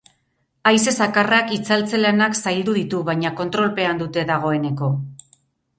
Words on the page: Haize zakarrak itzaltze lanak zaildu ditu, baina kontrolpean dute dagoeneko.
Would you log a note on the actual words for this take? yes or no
no